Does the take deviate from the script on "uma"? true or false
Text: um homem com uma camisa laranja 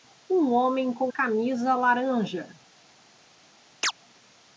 true